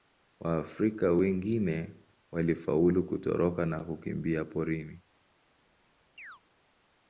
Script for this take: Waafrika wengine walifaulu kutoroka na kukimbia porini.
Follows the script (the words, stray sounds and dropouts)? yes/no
no